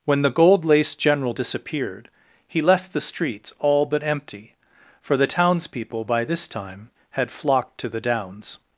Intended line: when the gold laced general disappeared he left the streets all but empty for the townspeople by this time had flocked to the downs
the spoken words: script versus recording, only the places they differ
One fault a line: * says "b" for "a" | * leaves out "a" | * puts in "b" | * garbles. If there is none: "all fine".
all fine